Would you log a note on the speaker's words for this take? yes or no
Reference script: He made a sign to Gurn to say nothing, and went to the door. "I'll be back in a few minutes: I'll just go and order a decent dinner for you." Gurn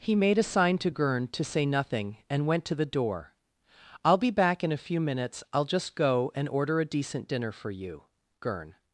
no